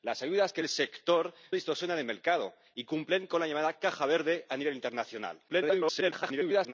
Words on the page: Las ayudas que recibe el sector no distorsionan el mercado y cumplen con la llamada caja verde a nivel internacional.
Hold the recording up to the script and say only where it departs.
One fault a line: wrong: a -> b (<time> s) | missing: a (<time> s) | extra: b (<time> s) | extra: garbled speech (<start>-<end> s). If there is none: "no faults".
missing: recibe (0.6 s)
missing: no (1.3 s)
extra: garbled speech (5.5-6.7 s)